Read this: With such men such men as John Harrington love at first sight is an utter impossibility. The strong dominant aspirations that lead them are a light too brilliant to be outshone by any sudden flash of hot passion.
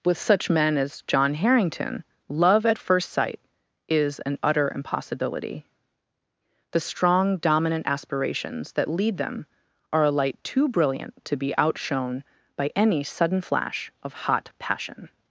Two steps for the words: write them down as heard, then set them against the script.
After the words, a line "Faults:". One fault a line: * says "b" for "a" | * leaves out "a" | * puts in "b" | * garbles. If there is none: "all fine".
With such men as John Harrington love at first sight is an utter impossibility. The strong dominant aspirations that lead them are a light too brilliant to be outshone by any sudden flash of hot passion.
Faults:
* leaves out "such men"